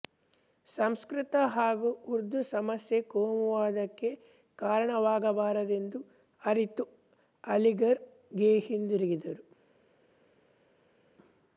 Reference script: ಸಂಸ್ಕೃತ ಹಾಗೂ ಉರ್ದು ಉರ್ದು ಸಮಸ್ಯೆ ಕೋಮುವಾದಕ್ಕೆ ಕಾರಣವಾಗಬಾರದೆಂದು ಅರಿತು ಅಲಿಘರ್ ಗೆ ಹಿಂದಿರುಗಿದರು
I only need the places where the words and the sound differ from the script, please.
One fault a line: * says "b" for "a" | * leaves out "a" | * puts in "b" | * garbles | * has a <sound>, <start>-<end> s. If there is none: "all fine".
* leaves out "ಉರ್ದು"